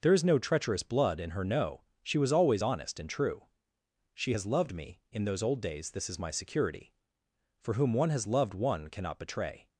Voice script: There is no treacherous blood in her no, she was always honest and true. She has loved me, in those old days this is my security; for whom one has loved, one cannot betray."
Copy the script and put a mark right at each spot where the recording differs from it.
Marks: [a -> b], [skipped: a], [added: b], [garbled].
There is no treacherous blood in her no, she was always honest and true. She has loved me, in those old days this is my security; for whom one has loved, one cannot betray."